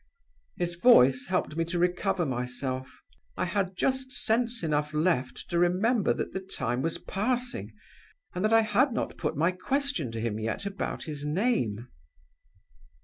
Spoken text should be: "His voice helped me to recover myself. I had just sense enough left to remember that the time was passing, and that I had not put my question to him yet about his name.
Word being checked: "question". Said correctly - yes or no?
yes